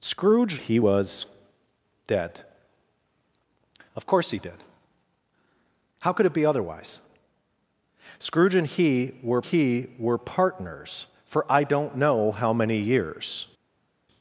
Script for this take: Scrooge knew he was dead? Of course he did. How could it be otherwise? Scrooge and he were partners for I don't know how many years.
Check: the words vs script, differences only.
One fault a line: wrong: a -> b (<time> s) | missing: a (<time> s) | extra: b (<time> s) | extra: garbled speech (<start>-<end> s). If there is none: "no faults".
missing: knew (0.6 s)
extra: he were (9.4 s)